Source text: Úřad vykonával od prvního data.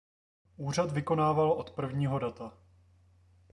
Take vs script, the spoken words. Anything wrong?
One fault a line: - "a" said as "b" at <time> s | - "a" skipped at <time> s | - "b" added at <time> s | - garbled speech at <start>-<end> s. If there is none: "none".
none